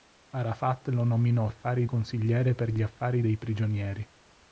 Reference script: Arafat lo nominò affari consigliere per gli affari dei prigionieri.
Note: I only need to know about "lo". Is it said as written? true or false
true